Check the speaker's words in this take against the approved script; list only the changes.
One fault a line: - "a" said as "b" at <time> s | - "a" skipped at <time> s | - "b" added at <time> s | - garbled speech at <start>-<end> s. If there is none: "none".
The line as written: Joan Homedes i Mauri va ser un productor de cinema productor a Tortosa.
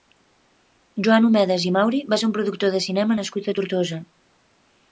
- "productor" said as "nascut" at 3.2 s